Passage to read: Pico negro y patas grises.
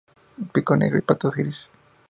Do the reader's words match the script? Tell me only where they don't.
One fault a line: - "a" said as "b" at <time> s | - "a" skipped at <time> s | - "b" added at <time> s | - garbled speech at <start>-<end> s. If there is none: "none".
none